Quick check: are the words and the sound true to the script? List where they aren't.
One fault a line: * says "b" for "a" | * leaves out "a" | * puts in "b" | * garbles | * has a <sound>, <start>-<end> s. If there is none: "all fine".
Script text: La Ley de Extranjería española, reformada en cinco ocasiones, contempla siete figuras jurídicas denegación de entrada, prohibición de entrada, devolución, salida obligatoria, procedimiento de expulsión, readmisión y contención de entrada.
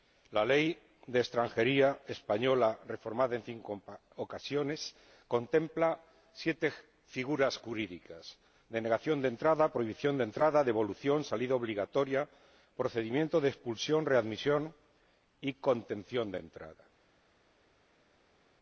all fine